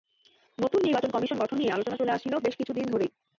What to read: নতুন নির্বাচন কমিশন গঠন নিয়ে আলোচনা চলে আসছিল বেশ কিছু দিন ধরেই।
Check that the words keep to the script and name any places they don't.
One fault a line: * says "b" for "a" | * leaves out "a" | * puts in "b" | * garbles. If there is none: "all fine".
all fine